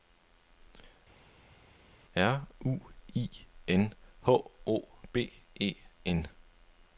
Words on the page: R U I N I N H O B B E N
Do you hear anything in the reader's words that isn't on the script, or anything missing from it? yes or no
yes